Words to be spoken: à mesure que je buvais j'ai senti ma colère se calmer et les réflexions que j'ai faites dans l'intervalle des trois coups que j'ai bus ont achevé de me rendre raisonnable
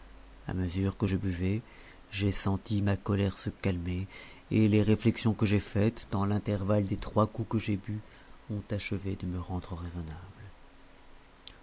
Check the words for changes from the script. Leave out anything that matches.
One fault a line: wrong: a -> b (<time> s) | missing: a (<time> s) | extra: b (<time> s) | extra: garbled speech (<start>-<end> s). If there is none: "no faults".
no faults